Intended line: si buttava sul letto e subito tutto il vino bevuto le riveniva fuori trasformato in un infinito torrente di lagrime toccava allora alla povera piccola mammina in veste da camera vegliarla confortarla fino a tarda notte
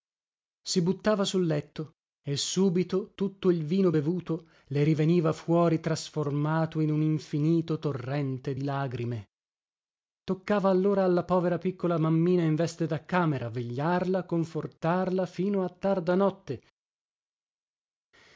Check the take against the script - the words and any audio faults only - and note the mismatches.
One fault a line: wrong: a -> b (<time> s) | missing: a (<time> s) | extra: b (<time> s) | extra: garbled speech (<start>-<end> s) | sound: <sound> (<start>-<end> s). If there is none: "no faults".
no faults